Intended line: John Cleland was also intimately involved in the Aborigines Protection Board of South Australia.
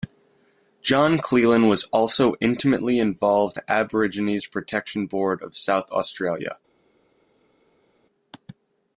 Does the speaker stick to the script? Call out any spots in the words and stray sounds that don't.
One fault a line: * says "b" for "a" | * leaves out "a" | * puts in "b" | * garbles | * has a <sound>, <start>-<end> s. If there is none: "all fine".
* leaves out "in"